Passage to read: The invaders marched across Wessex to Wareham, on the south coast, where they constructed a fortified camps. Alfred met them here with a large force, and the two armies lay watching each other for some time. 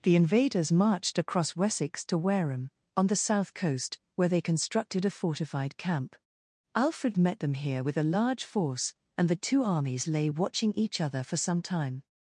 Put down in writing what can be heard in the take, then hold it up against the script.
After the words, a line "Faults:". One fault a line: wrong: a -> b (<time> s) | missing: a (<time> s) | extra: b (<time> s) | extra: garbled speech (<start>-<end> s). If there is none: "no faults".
The invaders marched across Wessex to Wareham, on the south coast, where they constructed a fortified camp. Alfred met them here with a large force, and the two armies lay watching each other for some time.
Faults:
wrong: camps -> camp (5.8 s)